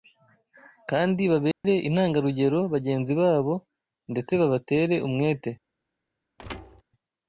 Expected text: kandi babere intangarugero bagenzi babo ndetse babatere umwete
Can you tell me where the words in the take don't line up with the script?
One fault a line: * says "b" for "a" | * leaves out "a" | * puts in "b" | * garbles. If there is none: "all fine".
all fine